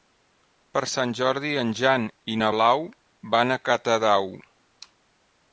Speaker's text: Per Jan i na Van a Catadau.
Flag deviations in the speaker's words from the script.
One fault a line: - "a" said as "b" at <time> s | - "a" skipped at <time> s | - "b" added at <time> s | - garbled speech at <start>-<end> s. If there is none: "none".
- "Sant Jordi en" added at 0.9 s
- "Blau" added at 2.5 s